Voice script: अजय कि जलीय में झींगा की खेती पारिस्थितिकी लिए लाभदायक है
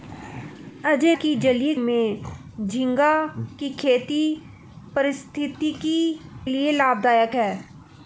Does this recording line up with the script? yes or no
yes